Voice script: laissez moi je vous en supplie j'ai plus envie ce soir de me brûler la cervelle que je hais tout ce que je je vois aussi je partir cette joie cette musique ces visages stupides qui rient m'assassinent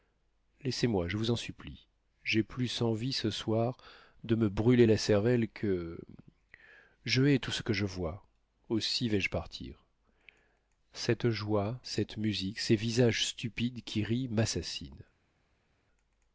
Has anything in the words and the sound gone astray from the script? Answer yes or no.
yes